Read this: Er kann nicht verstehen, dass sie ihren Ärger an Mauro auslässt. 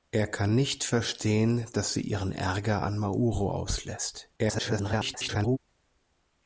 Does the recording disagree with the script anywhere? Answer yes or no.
yes